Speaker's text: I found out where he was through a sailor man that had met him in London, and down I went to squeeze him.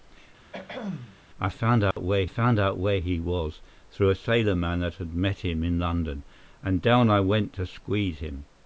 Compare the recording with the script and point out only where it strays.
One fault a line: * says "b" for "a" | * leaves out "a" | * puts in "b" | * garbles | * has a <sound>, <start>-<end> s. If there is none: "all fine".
* has a throat clearing, 0.5-1.2 s
* has a dropout, 1.9-2.0 s
* puts in "found out where"